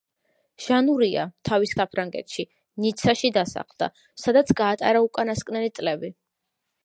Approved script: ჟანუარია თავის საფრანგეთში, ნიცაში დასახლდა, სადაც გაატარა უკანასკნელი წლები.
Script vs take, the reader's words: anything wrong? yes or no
no